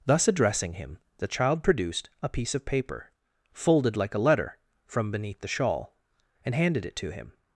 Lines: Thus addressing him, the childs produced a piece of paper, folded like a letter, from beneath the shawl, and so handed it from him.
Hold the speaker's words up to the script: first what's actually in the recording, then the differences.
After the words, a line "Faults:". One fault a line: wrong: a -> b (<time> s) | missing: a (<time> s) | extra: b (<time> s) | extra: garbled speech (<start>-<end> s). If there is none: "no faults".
Thus addressing him, the child produced a piece of paper, folded like a letter, from beneath the shawl, and handed it to him.
Faults:
wrong: childs -> child (1.3 s)
missing: so (6.5 s)
wrong: from -> to (7.0 s)